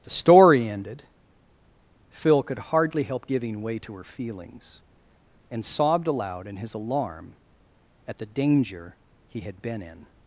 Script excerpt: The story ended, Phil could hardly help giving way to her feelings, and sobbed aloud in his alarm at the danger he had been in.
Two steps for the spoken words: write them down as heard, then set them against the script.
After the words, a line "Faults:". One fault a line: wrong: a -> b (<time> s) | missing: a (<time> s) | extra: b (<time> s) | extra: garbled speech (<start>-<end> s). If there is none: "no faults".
The story ended, Phil could hardly help giving way to her feelings, and sobbed aloud in his alarm at the danger he had been in.
Faults:
no faults